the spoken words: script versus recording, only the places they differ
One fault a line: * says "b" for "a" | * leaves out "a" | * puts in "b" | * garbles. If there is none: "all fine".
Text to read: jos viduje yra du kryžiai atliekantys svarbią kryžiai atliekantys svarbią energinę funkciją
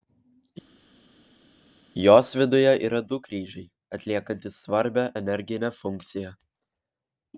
* leaves out "kryžiai atliekantys svarbią"